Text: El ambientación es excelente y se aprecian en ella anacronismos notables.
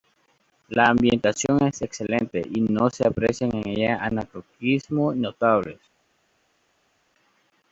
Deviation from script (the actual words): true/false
true